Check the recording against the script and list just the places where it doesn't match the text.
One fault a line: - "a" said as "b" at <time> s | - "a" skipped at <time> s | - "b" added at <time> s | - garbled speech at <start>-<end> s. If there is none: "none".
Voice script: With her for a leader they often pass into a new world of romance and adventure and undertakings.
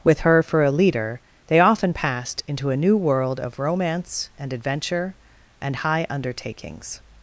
- "pass" said as "passed" at 1.9 s
- "high" added at 5.7 s